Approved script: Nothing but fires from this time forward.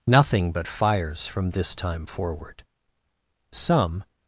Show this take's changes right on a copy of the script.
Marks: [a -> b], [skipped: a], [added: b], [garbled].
Nothing but fires from this time forward. [added: Some]